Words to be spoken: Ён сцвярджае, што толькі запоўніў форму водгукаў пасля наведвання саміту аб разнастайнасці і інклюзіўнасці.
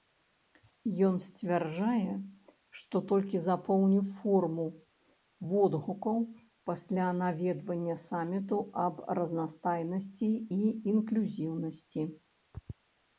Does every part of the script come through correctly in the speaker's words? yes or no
yes